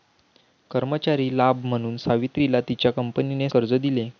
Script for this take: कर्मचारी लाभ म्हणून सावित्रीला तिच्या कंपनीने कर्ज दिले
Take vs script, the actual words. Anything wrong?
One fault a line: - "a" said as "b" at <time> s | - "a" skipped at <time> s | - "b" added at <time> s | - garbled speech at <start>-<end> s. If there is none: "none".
none